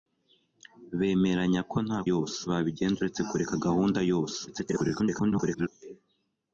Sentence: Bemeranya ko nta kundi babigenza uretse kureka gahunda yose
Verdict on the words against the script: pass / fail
fail